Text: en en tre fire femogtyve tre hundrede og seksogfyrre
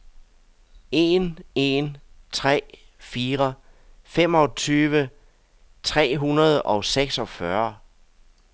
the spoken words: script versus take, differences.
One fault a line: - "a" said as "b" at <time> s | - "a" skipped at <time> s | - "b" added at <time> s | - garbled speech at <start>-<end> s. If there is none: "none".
none